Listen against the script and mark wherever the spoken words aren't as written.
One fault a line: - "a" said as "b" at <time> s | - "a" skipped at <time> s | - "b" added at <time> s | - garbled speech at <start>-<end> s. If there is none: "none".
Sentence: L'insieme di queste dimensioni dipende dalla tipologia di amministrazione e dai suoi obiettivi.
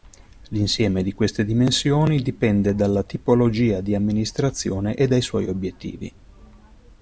none